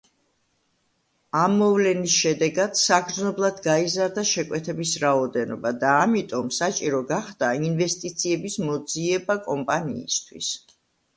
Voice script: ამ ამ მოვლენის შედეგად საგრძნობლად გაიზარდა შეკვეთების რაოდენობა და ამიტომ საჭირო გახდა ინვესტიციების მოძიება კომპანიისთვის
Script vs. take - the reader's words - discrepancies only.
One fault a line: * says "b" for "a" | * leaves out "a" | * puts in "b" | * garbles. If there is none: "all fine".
* leaves out "ამ"